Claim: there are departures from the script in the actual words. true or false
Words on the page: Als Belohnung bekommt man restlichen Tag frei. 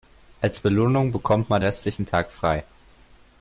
false